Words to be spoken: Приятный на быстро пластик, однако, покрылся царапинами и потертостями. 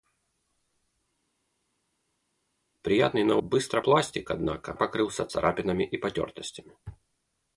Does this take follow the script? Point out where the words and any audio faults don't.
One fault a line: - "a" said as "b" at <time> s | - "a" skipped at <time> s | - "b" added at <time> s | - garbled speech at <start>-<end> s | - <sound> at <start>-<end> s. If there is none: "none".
none